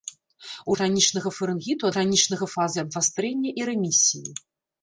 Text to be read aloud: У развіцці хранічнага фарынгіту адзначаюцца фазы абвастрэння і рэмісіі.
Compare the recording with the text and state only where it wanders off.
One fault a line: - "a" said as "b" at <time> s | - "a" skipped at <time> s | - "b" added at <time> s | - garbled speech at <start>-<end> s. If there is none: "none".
- "развіцці" skipped at 0.8 s
- "адзначаюцца" said as "хранічнага" at 1.9 s